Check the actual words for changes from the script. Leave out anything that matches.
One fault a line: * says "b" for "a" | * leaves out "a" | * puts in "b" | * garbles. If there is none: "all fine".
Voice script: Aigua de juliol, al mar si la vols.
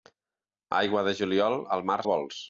* leaves out "si"